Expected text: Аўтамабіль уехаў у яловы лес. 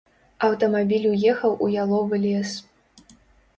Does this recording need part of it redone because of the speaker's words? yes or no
no